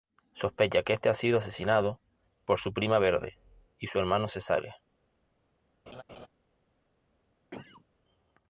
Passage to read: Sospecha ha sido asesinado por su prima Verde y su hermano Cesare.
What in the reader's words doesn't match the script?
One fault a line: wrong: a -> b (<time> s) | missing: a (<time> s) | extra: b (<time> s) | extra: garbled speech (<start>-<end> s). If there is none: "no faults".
extra: que este (0.8 s)